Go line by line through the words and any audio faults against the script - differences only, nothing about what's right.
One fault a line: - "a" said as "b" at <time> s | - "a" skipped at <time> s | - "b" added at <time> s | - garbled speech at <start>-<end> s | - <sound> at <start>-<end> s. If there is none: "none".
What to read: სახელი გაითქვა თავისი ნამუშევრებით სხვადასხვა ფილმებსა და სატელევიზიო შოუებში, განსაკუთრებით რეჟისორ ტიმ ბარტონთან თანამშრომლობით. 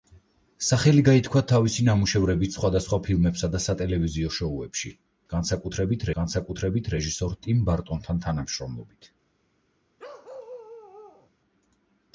- "განსაკუთრებით" added at 6.2 s
- bark at 10.0-11.3 s